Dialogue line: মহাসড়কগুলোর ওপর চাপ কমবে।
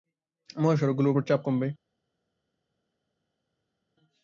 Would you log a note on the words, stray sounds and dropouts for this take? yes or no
no